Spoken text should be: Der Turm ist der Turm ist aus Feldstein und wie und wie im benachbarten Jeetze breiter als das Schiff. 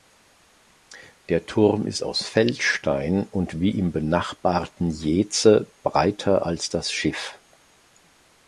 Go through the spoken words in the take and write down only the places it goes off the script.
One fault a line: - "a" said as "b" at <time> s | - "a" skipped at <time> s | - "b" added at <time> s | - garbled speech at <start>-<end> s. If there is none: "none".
- "der Turm ist" skipped at 2.0 s
- "und wie" skipped at 3.8 s